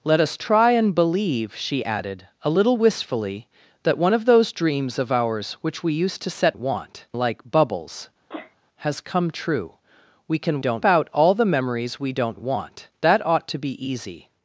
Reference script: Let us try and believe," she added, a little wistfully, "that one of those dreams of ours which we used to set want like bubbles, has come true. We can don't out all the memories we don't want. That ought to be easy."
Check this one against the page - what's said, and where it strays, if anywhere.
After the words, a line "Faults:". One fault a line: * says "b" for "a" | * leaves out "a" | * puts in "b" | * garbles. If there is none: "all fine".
Let us try and believe," she added, a little wistfully, "that one of those dreams of ours which we used to set want like bubbles, has come true. We can don't out all the memories we don't want. That ought to be easy."
Faults:
all fine